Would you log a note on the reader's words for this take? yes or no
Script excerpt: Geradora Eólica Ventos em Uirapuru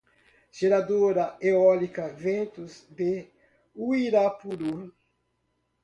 yes